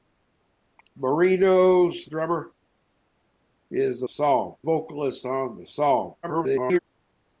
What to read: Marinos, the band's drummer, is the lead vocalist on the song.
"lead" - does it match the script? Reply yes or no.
no